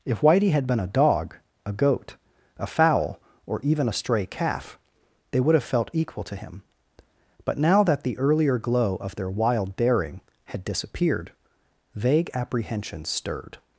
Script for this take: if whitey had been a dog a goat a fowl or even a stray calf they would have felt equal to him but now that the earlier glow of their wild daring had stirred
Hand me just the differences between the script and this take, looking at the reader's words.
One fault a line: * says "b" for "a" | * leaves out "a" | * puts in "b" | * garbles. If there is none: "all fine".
* puts in "disappeared vague apprehensions"